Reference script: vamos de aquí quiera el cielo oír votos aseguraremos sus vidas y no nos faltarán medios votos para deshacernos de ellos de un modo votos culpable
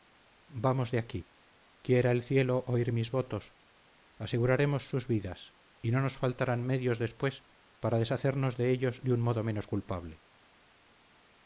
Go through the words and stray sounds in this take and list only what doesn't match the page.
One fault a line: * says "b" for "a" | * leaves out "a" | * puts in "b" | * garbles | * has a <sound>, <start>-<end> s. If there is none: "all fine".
* puts in "mis"
* says "después" for "votos"
* says "menos" for "votos"